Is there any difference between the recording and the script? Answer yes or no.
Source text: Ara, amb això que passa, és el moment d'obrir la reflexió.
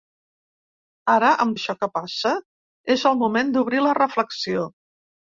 no